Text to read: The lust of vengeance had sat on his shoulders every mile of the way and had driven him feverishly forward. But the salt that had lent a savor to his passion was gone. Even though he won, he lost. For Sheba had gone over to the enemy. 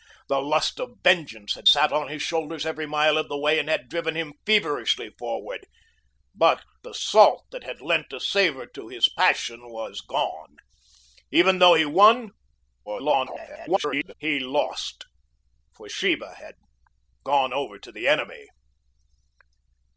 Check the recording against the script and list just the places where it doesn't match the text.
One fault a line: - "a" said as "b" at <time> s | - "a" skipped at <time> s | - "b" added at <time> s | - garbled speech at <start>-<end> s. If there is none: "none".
- garbled speech at 12.9-14.1 s